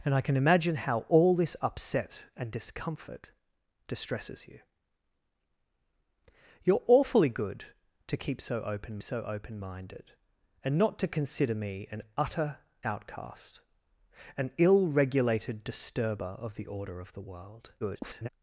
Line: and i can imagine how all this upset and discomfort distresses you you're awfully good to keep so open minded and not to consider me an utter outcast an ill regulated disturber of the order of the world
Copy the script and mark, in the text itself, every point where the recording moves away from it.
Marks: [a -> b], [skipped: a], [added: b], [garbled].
and i can imagine how all this upset and discomfort distresses you you're awfully good to keep so open [added: so open] minded and not to consider me an utter outcast an ill regulated disturber of the order of the world [garbled]